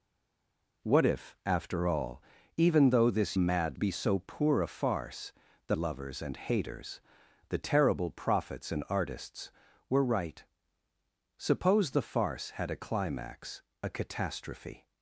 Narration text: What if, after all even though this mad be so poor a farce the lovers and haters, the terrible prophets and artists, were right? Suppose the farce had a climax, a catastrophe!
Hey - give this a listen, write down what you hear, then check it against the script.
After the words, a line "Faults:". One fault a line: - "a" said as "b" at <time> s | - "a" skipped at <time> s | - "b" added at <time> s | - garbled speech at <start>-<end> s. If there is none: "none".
What if, after all even though this mad be so poor a farce the lovers and haters, the terrible prophets and artists, were right? Suppose the farce had a climax, a catastrophe!
Faults:
none